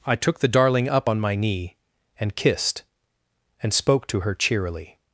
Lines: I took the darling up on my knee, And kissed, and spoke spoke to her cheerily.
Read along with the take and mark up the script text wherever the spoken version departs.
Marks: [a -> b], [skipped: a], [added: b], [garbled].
I took the darling up on my knee, And kissed, and spoke [skipped: spoke] to her cheerily.